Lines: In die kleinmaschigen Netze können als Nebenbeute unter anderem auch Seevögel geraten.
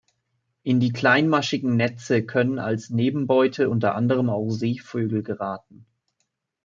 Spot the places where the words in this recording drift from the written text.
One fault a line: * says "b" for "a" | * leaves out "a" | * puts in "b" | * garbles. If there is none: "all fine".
all fine